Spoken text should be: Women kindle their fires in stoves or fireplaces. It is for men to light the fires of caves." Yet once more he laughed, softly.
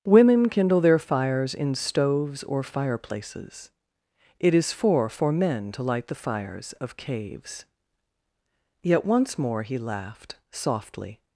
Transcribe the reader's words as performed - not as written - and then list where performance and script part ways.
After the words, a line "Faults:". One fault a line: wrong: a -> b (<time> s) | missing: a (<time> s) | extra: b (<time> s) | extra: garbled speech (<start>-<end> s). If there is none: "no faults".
Women kindle their fires in stoves or fireplaces. It is for for men to light the fires of caves." Yet once more he laughed, softly.
Faults:
extra: for (5.1 s)